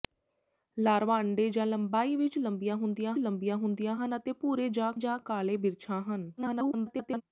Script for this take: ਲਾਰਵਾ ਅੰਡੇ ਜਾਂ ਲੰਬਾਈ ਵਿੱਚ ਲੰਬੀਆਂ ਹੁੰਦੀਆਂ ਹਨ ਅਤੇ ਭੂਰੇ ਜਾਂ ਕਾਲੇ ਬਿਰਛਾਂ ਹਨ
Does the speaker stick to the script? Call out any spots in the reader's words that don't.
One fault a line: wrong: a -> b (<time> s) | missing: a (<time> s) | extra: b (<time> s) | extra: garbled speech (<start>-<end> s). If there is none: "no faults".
extra: ਲੰਬੀਆਂ ਹੁੰਦੀਆਂ (3.2 s)
extra: ਜਾਂ (5.0 s)
extra: garbled speech (6.4-7.2 s)